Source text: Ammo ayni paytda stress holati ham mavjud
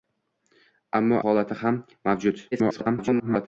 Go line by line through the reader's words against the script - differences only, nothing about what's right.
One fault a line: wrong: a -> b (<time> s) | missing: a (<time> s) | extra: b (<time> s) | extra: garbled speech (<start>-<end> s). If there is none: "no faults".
missing: ayni paytda stress (1.2 s)
extra: garbled speech (2.5-3.5 s)